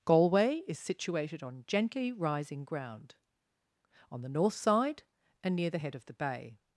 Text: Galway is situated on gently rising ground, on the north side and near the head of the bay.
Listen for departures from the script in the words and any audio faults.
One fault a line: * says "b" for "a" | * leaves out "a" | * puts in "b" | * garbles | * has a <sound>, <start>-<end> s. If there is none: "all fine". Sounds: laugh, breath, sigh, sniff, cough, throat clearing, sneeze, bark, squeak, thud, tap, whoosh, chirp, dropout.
all fine